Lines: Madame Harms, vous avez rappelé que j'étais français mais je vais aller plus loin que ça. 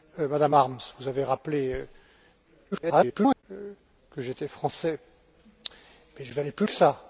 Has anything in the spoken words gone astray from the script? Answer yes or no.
yes